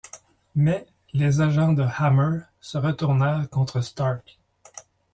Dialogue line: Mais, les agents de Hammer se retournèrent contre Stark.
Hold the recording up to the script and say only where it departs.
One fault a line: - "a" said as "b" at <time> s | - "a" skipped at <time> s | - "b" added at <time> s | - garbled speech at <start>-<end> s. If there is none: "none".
none